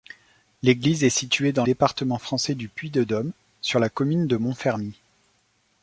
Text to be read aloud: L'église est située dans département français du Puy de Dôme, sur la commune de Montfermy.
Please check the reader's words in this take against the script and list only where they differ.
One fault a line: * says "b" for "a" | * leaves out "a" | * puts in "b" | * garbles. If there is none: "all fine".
all fine